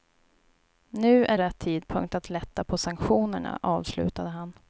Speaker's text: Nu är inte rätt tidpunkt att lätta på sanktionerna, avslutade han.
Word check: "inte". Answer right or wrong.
wrong